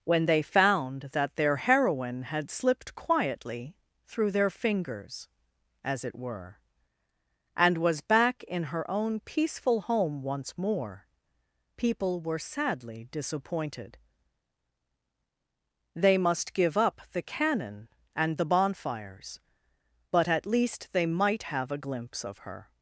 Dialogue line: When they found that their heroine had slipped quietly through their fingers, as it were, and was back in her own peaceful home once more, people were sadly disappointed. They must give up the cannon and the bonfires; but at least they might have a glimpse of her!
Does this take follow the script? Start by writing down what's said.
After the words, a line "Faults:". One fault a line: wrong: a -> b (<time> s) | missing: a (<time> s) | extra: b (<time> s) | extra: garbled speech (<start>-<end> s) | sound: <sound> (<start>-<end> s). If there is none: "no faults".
When they found that their heroine had slipped quietly through their fingers, as it were, and was back in her own peaceful home once more, people were sadly disappointed. They must give up the cannon and the bonfires; but at least they might have a glimpse of her!
Faults:
no faults